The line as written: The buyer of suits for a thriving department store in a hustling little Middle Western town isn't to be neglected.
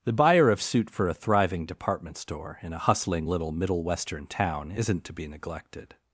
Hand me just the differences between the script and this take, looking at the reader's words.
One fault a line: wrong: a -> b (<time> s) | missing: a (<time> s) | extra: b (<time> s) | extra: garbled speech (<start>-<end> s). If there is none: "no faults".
wrong: suits -> suit (0.6 s)